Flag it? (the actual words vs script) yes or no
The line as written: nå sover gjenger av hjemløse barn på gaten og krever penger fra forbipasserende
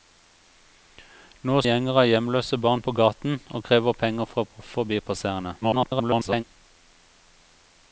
yes